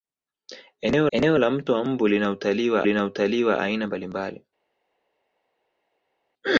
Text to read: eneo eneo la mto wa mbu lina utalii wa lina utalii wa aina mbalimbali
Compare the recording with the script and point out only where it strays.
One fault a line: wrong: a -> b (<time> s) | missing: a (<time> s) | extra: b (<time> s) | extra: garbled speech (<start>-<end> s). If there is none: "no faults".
no faults